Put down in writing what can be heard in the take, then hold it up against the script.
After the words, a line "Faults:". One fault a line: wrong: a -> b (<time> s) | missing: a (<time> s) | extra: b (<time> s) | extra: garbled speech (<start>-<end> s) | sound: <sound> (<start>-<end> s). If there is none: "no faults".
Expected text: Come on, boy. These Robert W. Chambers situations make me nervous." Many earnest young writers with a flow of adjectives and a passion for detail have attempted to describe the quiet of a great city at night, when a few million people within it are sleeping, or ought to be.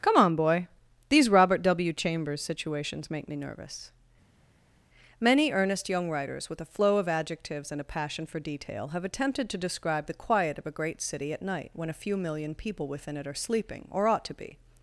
Come on, boy. These Robert W. Chambers situations make me nervous." Many earnest young writers with a flow of adjectives and a passion for detail have attempted to describe the quiet of a great city at night, when a few million people within it are sleeping, or ought to be.
Faults:
no faults